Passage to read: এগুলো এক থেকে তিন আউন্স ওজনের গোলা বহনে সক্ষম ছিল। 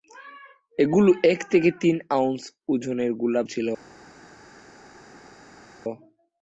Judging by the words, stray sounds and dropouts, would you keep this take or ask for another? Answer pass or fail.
fail